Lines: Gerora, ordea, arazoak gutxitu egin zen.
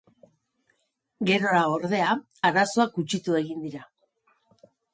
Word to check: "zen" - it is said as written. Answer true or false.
false